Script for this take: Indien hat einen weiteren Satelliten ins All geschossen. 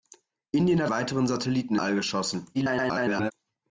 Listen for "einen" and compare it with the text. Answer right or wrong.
wrong